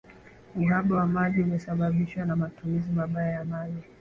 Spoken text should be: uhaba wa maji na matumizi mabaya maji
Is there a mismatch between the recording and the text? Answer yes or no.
yes